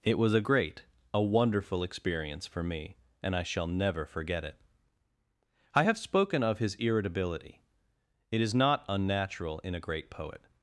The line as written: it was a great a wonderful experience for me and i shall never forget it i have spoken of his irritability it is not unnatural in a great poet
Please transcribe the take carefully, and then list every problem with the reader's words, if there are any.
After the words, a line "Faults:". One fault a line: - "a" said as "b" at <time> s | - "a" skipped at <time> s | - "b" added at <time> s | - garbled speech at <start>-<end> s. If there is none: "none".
it was a great a wonderful experience for me and i shall never forget it i have spoken of his irritability it is not unnatural in a great poet
Faults:
none